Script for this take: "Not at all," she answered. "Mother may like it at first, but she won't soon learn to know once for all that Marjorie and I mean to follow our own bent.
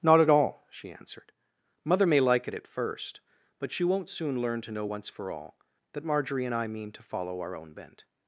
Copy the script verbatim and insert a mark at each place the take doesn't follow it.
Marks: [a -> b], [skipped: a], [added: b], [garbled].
"Not at all," she answered. "Mother may like it at first, but she won't soon learn to know once for all that Marjorie and I mean to follow our own bent.